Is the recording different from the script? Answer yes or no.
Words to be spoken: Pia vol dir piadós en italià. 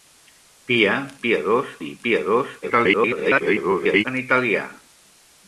yes